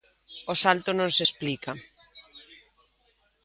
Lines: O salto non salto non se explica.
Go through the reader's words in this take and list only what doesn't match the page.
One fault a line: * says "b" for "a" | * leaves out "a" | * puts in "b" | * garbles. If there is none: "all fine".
* leaves out "salto non"